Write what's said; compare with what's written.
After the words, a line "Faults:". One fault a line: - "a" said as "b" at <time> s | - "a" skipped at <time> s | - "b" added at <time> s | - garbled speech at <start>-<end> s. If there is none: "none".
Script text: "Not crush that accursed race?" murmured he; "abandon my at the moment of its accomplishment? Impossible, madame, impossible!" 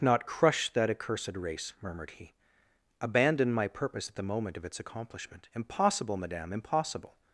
"Not crush that accursed race?" murmured he; "abandon my purpose at the moment of its accomplishment? Impossible, madame, impossible!"
Faults:
- "purpose" added at 3.7 s